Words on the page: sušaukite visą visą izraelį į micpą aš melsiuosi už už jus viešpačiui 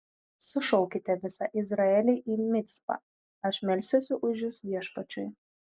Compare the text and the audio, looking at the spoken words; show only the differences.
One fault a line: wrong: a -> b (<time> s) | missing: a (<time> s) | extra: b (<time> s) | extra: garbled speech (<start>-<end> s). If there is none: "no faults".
missing: visą (1.5 s)
missing: už (4.5 s)